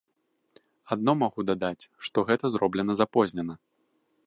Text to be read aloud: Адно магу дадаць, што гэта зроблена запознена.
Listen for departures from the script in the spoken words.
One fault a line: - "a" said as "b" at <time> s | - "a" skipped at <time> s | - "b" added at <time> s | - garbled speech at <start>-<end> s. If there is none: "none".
none